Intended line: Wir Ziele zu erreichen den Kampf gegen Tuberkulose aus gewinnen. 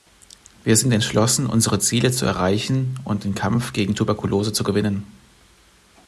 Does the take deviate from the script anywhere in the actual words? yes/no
yes